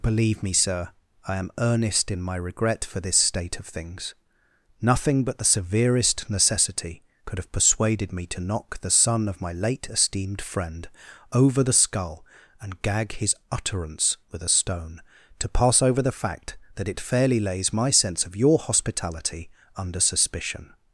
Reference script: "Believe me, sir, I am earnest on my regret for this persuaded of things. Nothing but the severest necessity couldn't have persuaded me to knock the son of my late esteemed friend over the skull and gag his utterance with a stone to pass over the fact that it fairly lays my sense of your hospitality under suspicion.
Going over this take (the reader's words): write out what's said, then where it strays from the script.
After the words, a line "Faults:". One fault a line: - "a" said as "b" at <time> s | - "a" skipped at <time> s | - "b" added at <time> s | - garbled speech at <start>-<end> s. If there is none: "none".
"Believe me, sir, I am earnest in my regret for this state of things. Nothing but the severest necessity could have persuaded me to knock the son of my late esteemed friend over the skull and gag his utterance with a stone to pass over the fact that it fairly lays my sense of your hospitality under suspicion.
Faults:
- "on" said as "in" at 2.1 s
- "persuaded" said as "state" at 3.2 s
- "couldn't" said as "could" at 7.2 s